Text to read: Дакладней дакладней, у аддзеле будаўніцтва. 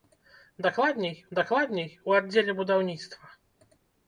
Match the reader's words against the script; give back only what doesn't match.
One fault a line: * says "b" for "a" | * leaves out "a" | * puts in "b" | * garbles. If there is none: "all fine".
all fine